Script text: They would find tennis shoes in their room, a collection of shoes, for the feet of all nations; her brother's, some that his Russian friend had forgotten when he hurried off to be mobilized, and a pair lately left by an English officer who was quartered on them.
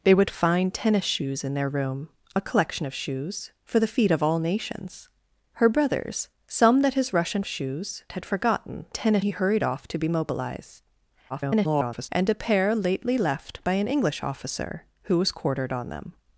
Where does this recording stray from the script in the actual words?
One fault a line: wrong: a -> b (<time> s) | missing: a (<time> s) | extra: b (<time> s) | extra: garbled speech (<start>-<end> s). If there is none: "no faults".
wrong: friend -> shoes (7.5 s)
wrong: when -> tennis (8.9 s)
extra: garbled speech (11.3-12.1 s)